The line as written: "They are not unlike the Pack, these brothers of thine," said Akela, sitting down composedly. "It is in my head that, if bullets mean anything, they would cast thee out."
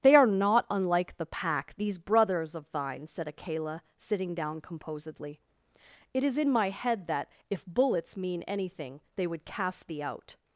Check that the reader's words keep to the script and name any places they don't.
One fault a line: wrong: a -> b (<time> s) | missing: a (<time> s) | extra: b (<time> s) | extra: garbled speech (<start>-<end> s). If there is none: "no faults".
no faults